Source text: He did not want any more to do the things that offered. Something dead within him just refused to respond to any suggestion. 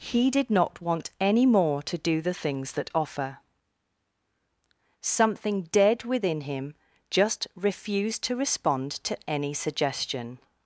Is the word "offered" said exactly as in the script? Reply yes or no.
no